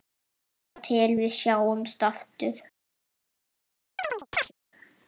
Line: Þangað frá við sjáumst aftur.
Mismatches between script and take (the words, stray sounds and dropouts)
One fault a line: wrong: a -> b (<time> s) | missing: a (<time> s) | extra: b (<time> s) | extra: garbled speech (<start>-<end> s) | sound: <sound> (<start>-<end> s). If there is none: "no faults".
wrong: frá -> til (0.9 s)
sound: chirp (4.0-4.5 s)